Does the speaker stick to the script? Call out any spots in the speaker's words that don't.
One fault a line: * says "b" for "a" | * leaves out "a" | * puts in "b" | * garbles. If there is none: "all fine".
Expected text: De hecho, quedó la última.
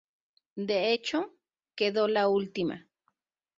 all fine